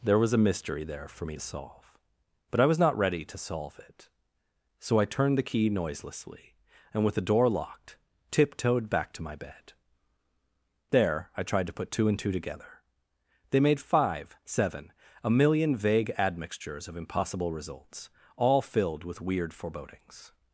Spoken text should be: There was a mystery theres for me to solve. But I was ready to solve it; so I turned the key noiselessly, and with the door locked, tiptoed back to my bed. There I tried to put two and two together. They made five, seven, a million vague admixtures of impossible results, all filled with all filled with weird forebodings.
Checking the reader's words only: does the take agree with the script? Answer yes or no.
no